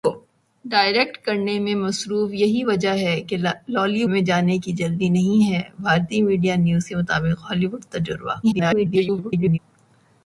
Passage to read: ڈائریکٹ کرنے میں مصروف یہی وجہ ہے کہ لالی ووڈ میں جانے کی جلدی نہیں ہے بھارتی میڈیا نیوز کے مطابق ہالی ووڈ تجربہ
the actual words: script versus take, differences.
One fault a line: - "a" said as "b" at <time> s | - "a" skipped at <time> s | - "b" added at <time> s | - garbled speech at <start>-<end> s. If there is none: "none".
- "ووڈ" skipped at 4.0 s
- garbled speech at 8.4-9.6 s